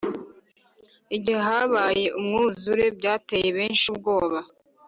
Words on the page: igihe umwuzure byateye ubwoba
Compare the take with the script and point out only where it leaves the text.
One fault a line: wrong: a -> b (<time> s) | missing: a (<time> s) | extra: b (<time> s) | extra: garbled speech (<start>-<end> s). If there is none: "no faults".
extra: habaye (1.5 s)
extra: benshi (3.6 s)